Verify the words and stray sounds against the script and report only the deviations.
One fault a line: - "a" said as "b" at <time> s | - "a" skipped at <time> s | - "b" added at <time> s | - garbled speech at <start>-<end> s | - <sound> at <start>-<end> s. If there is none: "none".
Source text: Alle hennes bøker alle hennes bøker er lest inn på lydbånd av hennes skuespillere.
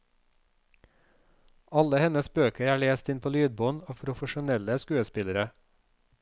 - "alle hennes bøker" skipped at 2.7 s
- "hennes" said as "profesjonelle" at 4.0 s